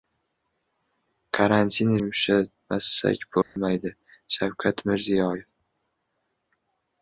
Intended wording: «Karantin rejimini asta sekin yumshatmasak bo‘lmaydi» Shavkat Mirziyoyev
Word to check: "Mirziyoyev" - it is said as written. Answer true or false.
true